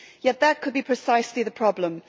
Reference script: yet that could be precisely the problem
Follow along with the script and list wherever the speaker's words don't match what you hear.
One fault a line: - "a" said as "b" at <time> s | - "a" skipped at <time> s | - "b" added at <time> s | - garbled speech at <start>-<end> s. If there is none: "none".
none